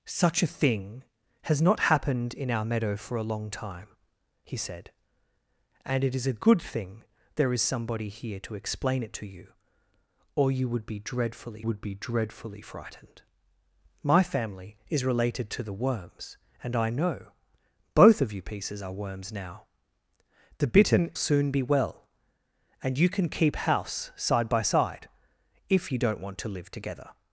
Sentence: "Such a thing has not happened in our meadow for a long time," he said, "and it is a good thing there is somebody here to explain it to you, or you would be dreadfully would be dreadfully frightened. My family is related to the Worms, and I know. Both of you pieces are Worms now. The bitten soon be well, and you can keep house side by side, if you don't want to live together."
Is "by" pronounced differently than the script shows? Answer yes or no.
no